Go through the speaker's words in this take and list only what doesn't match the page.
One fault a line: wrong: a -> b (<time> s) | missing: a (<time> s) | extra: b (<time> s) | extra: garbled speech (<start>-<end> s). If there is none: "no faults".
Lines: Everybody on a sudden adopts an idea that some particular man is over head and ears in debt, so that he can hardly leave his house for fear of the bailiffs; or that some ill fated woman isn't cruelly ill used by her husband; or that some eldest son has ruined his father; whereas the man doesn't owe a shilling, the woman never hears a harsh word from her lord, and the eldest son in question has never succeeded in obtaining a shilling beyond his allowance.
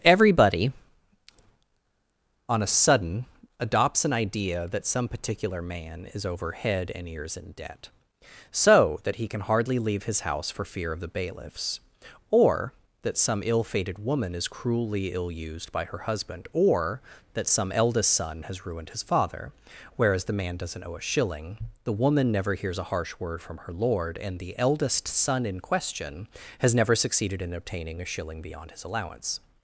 wrong: isn't -> is (14.4 s)